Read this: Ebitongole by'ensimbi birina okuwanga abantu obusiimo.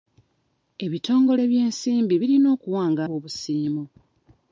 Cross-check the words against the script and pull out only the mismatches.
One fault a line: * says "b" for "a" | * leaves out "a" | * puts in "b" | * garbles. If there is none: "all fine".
* leaves out "abantu"